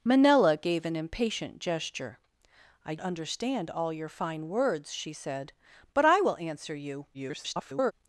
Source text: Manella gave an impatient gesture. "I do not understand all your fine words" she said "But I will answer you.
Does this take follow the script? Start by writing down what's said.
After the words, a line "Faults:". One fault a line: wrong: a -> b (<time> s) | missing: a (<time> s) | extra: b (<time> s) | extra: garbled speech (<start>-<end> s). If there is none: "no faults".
Manella gave an impatient gesture. "I understand all your fine words" she said "But I will answer you. [garbled]
Faults:
missing: do not (3.0 s)
extra: garbled speech (7.1-7.9 s)